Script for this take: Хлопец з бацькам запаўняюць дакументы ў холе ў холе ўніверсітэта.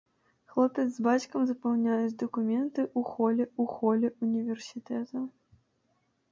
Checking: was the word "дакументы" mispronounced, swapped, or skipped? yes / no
no